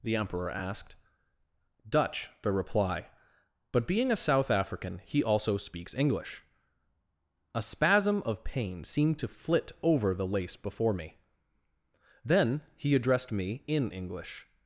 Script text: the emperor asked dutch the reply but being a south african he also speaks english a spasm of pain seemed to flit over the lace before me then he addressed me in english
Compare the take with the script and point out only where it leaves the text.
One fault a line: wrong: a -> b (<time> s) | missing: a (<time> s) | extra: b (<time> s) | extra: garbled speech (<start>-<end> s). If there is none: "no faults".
no faults